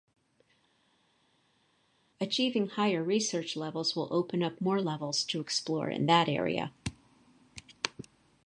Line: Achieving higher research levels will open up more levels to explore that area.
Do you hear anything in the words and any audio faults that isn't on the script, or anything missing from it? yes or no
yes